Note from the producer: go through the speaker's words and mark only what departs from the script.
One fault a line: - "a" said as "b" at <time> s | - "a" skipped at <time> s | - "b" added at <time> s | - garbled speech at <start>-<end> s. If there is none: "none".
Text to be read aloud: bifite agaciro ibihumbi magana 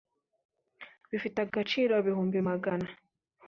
none